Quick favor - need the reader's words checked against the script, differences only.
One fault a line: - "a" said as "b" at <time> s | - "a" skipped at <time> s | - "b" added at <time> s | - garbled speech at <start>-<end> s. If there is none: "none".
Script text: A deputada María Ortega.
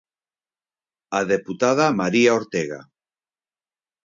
none